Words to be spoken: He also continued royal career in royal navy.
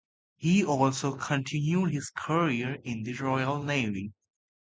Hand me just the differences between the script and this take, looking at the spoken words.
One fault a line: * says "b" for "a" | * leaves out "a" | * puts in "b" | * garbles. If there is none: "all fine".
* says "his" for "royal"
* puts in "the"